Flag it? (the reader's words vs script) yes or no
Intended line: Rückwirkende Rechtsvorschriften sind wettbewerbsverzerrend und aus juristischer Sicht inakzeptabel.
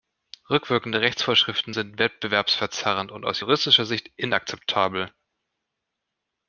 no